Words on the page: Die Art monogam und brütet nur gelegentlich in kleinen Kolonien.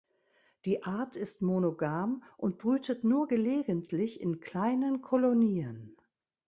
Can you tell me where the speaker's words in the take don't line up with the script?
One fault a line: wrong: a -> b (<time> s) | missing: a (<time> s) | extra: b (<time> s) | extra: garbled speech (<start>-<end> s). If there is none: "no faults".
extra: ist (1.2 s)